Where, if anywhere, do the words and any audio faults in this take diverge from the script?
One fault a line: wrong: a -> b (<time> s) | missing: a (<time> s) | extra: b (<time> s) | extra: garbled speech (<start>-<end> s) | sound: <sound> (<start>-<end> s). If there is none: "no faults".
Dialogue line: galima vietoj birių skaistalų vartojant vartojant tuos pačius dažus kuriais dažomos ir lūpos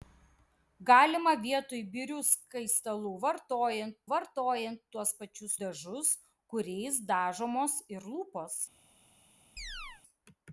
sound: chirp (9.6-10.0 s)